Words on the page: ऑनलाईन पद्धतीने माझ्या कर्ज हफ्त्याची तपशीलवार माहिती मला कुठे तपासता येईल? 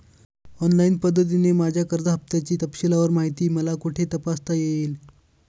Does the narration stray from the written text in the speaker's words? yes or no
no